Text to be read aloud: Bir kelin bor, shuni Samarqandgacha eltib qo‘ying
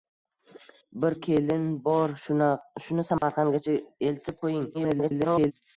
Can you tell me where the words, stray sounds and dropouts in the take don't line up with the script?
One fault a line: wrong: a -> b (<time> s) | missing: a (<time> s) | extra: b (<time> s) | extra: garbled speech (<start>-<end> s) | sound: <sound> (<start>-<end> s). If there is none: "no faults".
sound: dropout (3.2-3.2 s)
extra: garbled speech (4.7-5.5 s)